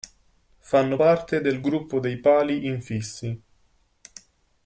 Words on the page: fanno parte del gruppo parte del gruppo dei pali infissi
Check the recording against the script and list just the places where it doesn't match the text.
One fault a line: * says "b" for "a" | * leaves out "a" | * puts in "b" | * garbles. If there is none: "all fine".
* leaves out "parte del gruppo"